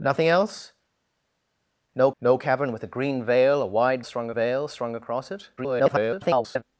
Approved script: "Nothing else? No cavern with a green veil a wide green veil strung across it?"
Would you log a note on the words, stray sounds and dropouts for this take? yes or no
yes